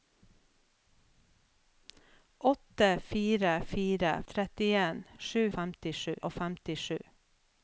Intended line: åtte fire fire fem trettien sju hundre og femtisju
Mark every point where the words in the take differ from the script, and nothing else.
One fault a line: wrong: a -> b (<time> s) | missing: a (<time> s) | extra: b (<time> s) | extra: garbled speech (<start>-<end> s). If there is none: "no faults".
missing: fem (4.2 s)
wrong: hundre -> femtisju (5.6 s)